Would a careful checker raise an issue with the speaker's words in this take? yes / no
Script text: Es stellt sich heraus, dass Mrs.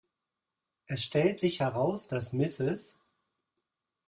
no